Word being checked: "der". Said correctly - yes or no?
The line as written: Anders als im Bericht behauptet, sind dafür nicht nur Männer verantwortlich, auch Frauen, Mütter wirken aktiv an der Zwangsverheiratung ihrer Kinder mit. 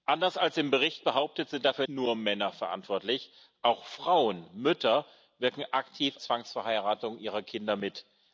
no